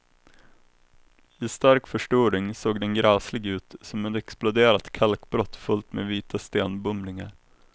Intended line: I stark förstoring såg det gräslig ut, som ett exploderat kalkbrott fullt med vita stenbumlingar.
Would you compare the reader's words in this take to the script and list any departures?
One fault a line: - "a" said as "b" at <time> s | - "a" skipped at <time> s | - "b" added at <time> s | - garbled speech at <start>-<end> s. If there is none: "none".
- "det" said as "den" at 2.8 s